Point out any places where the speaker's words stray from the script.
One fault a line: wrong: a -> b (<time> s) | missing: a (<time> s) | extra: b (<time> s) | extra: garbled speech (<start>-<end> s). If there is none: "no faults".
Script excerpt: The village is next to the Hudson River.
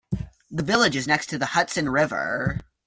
no faults